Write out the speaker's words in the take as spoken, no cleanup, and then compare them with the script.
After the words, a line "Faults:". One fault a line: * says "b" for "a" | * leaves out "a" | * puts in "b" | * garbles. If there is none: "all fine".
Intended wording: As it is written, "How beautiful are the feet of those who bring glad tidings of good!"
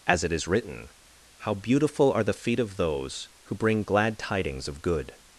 As it is written, "How beautiful are the feet of those who bring glad tidings of good!"
Faults:
all fine